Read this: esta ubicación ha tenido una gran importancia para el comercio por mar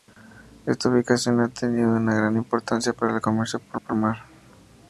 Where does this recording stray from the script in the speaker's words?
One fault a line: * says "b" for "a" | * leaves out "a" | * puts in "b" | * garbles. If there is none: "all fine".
* puts in "por"